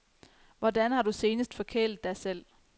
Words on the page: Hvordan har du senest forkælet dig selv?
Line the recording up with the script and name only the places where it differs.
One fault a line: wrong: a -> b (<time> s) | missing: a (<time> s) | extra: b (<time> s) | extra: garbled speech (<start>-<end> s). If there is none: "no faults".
no faults